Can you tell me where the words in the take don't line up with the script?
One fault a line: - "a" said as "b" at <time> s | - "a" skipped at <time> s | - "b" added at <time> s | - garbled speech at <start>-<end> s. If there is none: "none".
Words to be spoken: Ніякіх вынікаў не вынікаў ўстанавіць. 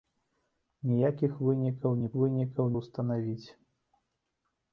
none